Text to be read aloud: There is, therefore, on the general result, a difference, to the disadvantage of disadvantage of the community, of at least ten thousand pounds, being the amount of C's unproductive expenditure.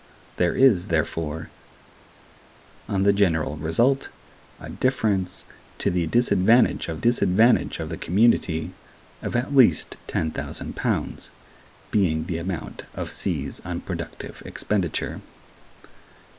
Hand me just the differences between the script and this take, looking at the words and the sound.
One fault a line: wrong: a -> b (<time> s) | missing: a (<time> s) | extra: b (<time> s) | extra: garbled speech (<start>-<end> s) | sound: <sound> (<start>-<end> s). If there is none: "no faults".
no faults